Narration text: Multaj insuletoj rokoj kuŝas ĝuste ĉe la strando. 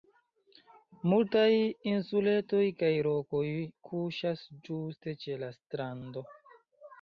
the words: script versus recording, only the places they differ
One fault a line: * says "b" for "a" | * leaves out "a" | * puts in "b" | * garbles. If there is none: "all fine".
* puts in "kaj"